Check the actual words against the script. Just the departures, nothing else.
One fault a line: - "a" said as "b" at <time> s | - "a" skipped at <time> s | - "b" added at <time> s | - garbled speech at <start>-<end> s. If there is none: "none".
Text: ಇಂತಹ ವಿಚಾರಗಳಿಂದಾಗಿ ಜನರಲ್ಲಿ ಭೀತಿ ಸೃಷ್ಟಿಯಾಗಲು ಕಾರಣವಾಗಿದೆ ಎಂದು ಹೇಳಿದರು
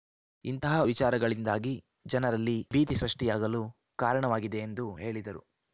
none